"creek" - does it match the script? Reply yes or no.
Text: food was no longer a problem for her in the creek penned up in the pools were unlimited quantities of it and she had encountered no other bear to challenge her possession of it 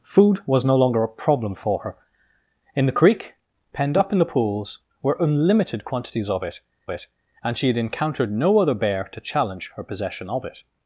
yes